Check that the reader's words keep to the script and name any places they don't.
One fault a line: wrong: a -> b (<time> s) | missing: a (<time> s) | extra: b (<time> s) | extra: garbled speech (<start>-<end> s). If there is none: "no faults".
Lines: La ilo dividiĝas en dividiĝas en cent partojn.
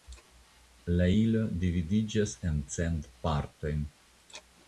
missing: dividiĝas en (2.6 s)